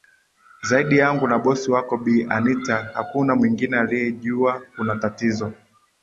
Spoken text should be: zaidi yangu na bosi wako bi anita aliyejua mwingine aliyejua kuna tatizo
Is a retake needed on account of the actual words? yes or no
yes